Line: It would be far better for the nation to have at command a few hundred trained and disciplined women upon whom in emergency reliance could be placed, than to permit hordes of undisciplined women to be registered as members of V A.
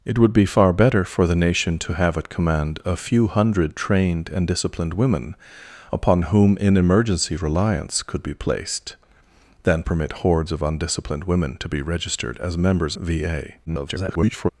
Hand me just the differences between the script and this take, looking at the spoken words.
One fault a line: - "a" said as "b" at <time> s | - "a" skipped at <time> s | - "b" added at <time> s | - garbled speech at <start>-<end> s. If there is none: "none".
- "to" skipped at 9.8 s
- "of" skipped at 13.0 s
- garbled speech at 13.6-14.5 s